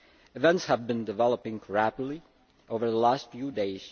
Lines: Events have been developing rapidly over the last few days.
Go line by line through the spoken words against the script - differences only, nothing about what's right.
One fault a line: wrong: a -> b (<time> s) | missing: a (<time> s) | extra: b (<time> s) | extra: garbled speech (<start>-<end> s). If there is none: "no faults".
no faults